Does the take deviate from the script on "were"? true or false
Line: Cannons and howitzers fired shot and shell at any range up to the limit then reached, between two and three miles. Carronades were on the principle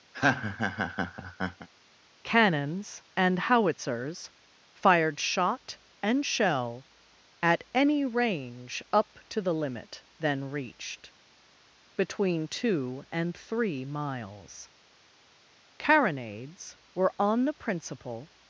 false